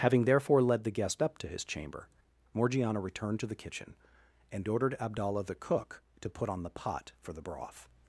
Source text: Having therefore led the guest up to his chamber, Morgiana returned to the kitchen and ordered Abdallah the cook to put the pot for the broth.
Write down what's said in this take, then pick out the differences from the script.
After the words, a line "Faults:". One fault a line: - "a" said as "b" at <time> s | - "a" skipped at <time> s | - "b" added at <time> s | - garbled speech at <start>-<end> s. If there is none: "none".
Having therefore led the guest up to his chamber, Morgiana returned to the kitchen and ordered Abdallah the cook to put on the pot for the broth.
Faults:
- "on" added at 6.5 s